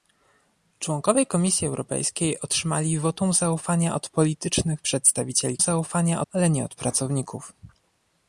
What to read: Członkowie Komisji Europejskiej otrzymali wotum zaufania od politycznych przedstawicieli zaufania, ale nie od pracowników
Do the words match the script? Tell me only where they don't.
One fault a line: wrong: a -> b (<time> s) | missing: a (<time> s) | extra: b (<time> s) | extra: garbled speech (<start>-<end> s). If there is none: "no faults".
no faults